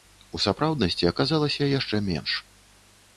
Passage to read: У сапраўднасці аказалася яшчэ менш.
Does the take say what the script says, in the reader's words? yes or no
yes